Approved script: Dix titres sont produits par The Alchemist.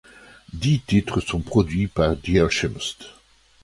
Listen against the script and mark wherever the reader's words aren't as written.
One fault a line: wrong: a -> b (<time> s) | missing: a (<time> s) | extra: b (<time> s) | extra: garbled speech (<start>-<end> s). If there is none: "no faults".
no faults